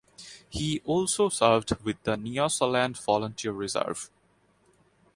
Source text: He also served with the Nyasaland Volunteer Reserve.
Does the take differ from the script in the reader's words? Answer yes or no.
no